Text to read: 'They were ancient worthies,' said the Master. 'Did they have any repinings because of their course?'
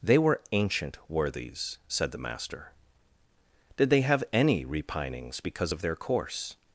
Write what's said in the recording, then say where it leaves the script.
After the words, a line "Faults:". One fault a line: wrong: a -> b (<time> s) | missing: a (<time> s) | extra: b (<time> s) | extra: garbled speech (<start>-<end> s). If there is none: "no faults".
'They were ancient worthies,' said the Master. 'Did they have any repinings because of their course?'
Faults:
no faults